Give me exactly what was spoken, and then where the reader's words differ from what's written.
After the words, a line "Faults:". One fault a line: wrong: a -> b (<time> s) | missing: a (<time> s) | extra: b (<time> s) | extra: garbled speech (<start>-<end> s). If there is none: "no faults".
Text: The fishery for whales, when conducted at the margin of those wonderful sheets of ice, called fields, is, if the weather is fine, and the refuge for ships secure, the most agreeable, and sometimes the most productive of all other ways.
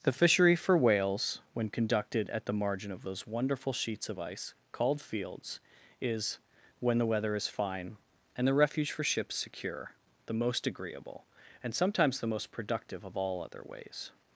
The fishery for whales, when conducted at the margin of those wonderful sheets of ice, called fields, is, when the weather is fine, and the refuge for ships secure, the most agreeable, and sometimes the most productive of all other ways.
Faults:
wrong: if -> when (6.8 s)